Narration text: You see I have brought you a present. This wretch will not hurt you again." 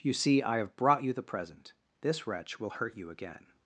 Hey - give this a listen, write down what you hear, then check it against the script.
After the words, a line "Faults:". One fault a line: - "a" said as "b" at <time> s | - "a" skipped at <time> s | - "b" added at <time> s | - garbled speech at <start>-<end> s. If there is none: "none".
You see I have brought you the present. This wretch will hurt you again."
Faults:
- "a" said as "the" at 1.1 s
- "not" skipped at 2.7 s